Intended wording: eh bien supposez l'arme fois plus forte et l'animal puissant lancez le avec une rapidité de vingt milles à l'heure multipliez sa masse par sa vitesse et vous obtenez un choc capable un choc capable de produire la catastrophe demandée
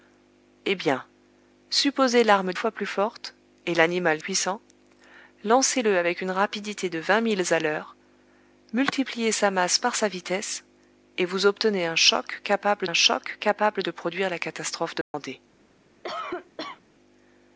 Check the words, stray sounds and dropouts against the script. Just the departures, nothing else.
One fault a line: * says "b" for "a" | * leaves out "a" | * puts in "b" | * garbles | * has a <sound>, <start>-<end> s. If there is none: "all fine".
* has a dropout, 15.0-15.1 s
* has a cough, 16.0-16.8 s